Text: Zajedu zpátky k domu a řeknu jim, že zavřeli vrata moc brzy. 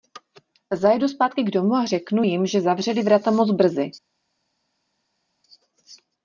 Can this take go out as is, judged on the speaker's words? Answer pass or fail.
pass